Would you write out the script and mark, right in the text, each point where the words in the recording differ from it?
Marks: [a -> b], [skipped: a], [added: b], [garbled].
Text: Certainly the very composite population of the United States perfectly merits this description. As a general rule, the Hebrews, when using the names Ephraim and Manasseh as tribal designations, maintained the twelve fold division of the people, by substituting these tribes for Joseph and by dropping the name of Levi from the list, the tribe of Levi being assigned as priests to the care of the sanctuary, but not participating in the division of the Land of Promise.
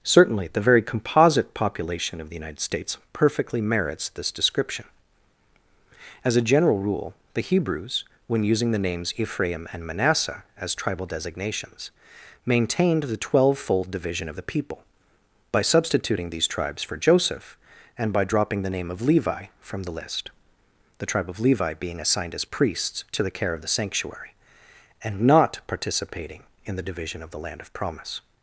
Certainly the very composite population of the United States perfectly merits this description. As a general rule, the Hebrews, when using the names Ephraim and Manasseh as tribal designations, maintained the twelve fold division of the people, by substituting these tribes for Joseph and by dropping the name of Levi from the list, the tribe of Levi being assigned as priests to the care of the sanctuary, [but -> and] not participating in the division of the Land of Promise.